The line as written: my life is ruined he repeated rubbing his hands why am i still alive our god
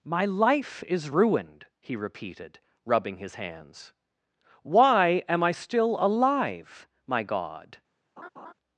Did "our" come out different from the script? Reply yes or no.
yes